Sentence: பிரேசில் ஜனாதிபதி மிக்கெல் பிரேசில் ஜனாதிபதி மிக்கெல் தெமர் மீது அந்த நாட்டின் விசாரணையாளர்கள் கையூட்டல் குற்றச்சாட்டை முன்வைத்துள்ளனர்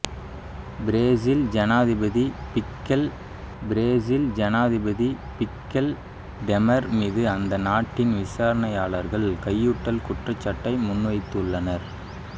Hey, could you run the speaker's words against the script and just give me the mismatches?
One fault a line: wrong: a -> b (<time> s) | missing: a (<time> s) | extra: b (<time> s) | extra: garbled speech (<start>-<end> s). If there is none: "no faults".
no faults